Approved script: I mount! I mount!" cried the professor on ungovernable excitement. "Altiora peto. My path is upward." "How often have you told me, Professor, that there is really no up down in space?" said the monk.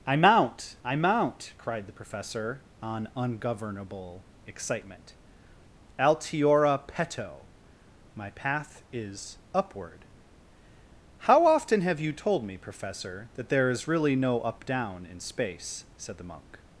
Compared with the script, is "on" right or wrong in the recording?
right